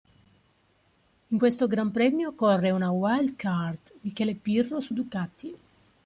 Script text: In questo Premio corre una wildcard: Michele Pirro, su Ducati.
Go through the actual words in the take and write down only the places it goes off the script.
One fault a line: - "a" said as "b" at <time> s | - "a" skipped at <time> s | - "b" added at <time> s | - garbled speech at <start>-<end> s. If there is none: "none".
- "Gran" added at 1.7 s